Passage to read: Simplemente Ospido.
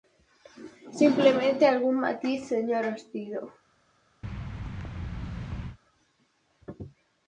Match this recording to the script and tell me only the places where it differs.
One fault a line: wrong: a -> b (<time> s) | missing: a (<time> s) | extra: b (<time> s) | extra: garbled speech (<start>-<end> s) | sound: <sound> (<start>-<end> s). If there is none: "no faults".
extra: algún matiz señor (1.7 s)
sound: thud (4.2-5.8 s)